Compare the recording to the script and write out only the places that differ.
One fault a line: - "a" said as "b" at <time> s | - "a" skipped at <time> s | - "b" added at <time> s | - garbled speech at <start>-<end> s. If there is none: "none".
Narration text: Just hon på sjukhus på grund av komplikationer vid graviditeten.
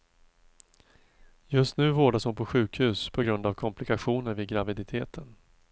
- "nu vårdas" added at 1.8 s